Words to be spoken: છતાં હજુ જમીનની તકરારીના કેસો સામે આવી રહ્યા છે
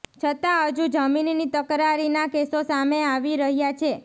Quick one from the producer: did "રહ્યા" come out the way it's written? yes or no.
yes